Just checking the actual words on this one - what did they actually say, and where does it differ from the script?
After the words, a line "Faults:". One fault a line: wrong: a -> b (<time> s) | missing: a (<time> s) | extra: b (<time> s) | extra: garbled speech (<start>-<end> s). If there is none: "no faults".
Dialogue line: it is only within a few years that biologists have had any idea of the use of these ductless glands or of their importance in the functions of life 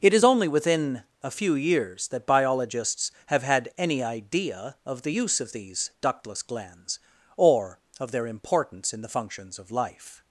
it is only within a few years that biologists have had any idea of the use of these ductless glands or of their importance in the functions of life
Faults:
no faults